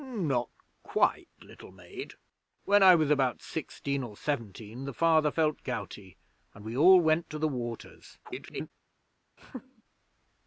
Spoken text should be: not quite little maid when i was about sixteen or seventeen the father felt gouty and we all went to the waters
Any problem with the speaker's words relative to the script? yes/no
yes